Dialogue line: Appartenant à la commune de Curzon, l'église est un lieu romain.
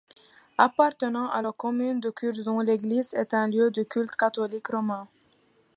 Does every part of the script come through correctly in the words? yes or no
no